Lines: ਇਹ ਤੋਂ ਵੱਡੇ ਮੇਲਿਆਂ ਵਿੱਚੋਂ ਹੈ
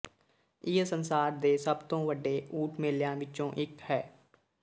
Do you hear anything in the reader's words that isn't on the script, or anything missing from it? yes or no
yes